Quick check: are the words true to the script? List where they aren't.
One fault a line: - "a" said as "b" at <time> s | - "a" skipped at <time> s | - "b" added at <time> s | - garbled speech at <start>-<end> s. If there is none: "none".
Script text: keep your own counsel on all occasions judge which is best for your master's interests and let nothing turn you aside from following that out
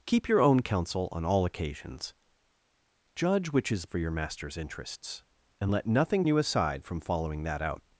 - "best" skipped at 3.9 s
- "turn" skipped at 6.3 s